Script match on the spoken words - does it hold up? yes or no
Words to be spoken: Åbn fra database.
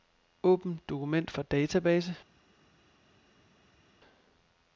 no